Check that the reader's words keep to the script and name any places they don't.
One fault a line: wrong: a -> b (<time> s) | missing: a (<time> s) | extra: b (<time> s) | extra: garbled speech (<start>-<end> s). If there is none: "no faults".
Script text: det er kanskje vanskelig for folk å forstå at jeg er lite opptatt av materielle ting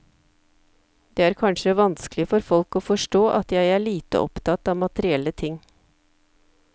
no faults